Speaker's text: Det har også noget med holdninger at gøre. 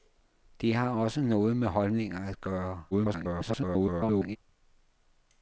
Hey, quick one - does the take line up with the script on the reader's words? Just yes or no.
no